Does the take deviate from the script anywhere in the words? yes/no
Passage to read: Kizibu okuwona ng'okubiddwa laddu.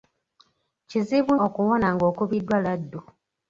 no